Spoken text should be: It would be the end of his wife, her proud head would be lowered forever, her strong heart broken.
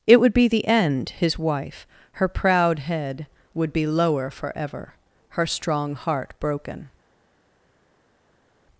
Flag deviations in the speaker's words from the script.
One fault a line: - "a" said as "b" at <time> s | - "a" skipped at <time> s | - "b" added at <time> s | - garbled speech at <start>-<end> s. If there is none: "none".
- "of" skipped at 1.1 s
- "lowered" said as "lower" at 3.9 s